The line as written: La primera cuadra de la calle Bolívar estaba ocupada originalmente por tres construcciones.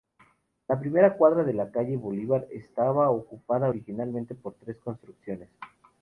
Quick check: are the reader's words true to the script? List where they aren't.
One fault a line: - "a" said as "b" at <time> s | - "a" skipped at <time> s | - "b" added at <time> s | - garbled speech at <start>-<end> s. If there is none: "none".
none